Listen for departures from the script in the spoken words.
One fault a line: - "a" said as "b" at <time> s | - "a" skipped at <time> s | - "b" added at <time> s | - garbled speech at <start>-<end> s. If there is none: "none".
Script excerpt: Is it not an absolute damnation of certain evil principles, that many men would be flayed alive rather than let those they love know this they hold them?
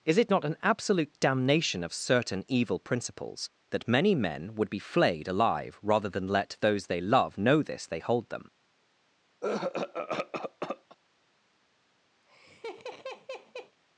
none